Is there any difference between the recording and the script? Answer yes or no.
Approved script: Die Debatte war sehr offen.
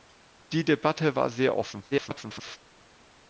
yes